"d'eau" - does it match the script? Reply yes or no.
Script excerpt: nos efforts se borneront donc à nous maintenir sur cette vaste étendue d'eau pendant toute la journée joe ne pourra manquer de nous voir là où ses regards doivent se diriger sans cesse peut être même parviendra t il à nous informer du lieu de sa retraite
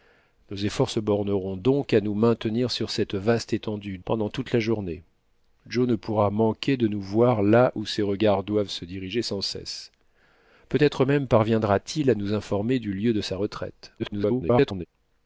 no